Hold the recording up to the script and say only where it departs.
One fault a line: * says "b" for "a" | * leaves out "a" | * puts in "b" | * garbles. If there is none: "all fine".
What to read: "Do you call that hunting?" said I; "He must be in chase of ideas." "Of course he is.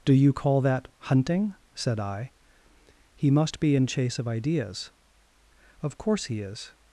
all fine